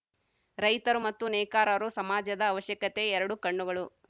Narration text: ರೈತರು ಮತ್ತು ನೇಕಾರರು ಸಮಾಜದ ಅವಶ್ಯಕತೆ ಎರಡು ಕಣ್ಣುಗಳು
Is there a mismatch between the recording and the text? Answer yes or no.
no